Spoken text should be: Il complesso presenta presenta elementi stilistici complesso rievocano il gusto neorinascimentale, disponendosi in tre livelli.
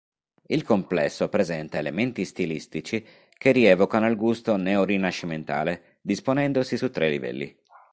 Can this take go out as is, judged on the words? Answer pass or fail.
fail